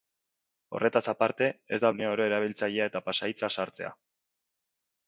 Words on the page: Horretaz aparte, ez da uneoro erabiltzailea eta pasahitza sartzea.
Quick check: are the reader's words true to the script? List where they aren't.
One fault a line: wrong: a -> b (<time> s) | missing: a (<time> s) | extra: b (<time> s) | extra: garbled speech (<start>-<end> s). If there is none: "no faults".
no faults